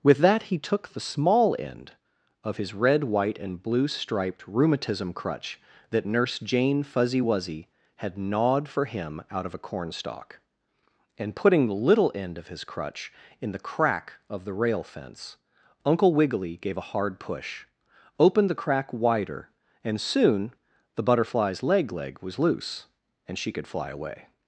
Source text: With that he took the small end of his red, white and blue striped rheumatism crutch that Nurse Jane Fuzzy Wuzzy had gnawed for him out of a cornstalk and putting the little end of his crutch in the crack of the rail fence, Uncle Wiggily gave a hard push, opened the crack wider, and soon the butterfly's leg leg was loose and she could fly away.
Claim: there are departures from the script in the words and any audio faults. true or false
false